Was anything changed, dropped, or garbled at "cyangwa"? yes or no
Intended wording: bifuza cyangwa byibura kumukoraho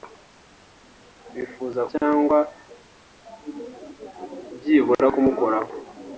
no